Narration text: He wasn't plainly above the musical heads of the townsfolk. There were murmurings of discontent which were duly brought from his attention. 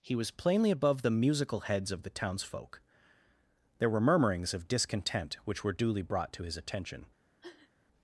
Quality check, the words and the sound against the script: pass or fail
fail